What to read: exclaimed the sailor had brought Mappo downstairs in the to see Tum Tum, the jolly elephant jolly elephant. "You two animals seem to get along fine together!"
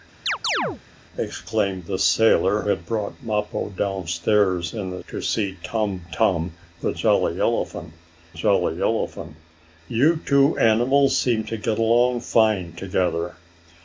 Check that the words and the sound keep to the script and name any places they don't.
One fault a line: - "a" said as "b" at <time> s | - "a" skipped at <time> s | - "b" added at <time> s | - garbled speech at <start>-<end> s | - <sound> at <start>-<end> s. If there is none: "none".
- chirp at 0.3-0.8 s